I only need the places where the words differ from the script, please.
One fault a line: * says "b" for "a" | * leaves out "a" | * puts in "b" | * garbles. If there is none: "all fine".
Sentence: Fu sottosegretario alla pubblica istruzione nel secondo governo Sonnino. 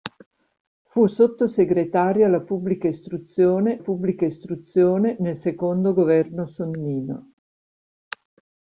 * puts in "pubblica istruzione"